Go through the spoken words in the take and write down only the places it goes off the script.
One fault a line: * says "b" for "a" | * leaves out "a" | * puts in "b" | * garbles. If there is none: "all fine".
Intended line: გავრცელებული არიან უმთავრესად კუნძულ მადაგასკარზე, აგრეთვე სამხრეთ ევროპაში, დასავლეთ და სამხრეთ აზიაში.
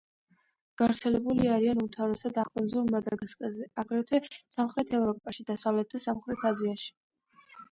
all fine